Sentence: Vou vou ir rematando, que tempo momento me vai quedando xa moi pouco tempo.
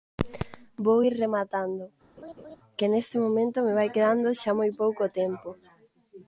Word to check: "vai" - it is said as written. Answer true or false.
true